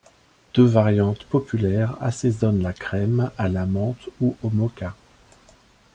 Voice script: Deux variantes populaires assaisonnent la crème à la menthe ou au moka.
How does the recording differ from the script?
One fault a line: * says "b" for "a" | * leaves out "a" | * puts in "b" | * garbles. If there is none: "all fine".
all fine